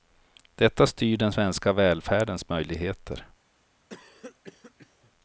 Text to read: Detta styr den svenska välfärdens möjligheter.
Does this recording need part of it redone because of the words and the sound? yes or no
yes